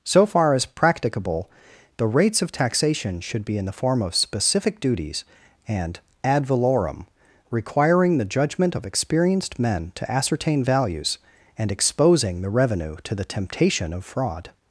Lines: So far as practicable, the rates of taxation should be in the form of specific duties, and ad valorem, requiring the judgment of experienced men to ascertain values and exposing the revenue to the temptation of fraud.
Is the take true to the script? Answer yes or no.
yes